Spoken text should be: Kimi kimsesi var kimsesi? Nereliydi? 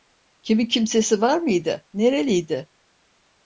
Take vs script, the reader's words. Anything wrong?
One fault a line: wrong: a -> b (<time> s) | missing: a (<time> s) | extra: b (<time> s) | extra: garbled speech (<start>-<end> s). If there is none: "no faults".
wrong: kimsesi -> mıydı (1.4 s)